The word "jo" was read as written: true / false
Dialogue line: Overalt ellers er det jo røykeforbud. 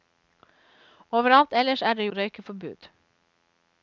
false